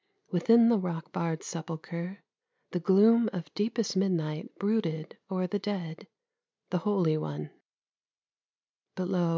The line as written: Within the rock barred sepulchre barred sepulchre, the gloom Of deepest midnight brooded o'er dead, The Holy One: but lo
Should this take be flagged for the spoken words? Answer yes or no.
yes